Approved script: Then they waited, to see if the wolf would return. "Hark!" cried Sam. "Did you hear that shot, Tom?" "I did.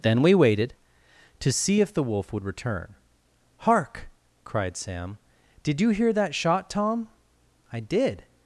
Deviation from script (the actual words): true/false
true